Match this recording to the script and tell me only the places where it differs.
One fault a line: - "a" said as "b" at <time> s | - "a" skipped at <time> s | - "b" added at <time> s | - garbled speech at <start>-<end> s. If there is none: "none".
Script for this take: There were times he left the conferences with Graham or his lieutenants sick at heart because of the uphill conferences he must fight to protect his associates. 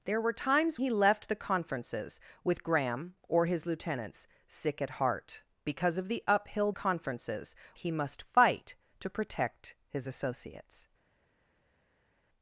none